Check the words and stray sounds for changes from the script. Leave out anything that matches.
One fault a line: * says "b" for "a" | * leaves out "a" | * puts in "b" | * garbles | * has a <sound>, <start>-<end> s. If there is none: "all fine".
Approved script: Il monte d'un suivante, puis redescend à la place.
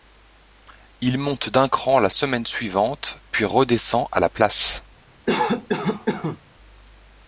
* puts in "cran la semaine"
* has a cough, 5.3-6.4 s